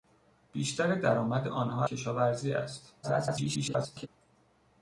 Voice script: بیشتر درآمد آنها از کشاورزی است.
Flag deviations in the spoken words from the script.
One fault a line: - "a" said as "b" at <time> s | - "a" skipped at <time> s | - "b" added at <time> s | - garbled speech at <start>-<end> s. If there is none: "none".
- "از" skipped at 1.9 s
- garbled speech at 3.0-4.1 s